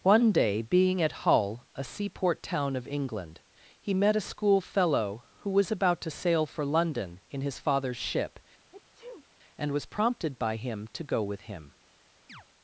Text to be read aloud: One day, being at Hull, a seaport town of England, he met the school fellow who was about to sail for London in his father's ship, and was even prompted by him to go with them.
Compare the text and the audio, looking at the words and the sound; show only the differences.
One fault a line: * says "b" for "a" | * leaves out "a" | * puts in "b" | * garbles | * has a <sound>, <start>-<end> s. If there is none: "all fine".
* says "a" for "the"
* has a sneeze, 8.7-9.3 s
* leaves out "even"
* says "him" for "them"
* has a chirp, 12.3-12.4 s